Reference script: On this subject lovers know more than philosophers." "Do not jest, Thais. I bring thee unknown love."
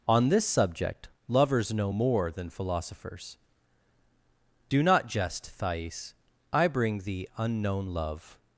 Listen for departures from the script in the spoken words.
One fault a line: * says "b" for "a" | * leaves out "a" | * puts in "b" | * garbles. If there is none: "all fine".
all fine